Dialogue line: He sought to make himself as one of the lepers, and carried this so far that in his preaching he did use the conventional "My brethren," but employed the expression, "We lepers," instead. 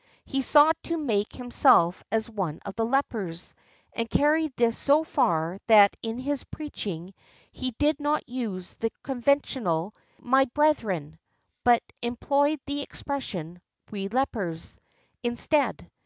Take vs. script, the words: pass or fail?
fail